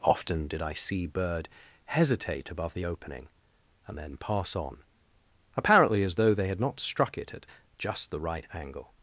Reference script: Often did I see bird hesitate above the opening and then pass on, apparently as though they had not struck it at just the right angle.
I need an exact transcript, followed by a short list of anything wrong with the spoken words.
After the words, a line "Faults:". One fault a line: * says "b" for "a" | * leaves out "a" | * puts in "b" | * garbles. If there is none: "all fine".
Often did I see bird hesitate above the opening and then pass on, apparently as though they had not struck it at just the right angle.
Faults:
all fine